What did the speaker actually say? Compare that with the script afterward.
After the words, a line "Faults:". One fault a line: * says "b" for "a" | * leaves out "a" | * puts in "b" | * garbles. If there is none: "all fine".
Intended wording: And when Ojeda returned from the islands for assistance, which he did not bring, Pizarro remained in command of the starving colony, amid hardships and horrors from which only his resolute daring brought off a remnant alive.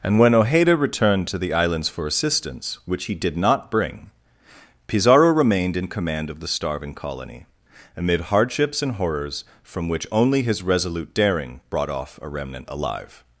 And when Ojeda returned to the islands for assistance, which he did not bring, Pizarro remained in command of the starving colony, amid hardships and horrors from which only his resolute daring brought off a remnant alive.
Faults:
* says "to" for "from"